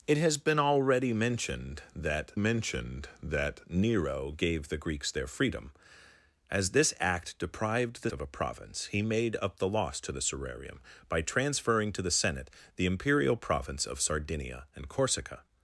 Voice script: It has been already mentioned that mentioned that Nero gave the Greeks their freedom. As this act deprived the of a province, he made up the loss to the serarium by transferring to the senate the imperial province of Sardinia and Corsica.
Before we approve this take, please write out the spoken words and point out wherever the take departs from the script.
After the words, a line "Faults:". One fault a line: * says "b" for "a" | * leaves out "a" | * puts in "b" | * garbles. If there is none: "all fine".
It has been already mentioned that mentioned that Nero gave the Greeks their freedom. As this act deprived the of a province, he made up the loss to the serarium by transferring to the senate the imperial province of Sardinia and Corsica.
Faults:
all fine